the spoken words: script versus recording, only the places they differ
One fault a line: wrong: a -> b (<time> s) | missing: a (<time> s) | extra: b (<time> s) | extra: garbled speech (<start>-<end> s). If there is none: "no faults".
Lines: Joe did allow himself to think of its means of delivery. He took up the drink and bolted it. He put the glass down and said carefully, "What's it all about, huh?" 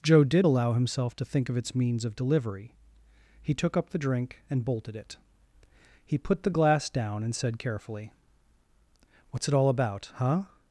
no faults